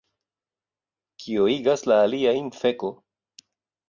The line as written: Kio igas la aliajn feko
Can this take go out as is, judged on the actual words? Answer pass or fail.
pass